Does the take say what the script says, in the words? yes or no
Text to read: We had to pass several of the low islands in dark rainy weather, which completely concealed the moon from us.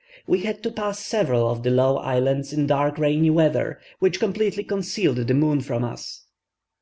yes